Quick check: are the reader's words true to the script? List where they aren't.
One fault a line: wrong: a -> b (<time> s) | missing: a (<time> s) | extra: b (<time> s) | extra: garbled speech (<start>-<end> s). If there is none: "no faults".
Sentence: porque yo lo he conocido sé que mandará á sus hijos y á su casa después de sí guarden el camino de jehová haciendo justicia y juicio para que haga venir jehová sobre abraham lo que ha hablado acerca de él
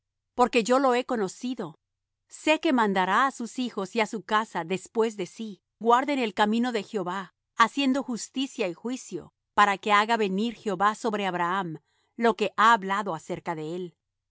no faults